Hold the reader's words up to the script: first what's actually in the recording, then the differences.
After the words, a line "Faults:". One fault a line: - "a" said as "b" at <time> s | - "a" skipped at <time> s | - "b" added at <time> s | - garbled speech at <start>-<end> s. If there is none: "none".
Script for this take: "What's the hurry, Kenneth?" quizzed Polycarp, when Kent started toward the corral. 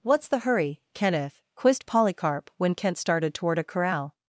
"What's the hurry, Kenneth?" quizzed Polycarp, when Kent started toward a corral.
Faults:
- "the" said as "a" at 3.6 s